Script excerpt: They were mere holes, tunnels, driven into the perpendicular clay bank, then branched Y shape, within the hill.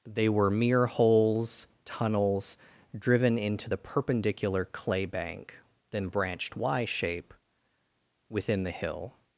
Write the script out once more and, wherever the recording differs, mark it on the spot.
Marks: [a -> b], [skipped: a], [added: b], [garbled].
They were mere holes, tunnels, driven into the perpendicular clay bank, then branched Y shape, within the hill.